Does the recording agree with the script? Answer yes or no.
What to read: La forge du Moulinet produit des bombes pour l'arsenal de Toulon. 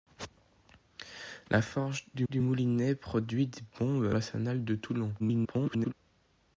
no